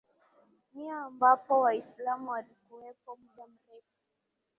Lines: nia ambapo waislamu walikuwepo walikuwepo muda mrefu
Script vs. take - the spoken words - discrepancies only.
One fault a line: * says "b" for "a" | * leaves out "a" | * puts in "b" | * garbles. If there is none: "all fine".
* leaves out "walikuwepo"